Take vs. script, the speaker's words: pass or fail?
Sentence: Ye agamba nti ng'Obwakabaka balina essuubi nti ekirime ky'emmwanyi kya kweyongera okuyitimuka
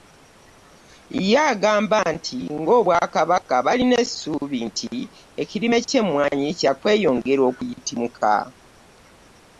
pass